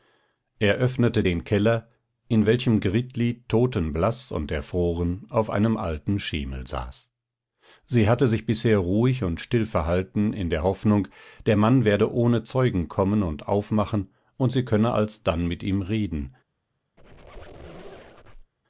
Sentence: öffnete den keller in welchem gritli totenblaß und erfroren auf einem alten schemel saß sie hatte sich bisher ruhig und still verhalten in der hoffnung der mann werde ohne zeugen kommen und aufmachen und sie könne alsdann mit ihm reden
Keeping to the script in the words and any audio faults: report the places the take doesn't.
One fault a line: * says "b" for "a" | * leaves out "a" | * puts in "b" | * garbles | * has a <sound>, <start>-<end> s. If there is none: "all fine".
* has a squeak, 17.0-18.5 s